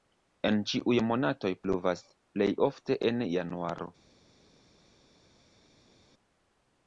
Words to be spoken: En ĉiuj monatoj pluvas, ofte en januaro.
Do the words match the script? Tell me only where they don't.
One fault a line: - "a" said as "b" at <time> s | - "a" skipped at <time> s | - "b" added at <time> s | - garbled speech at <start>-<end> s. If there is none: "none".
- "plej" added at 2.4 s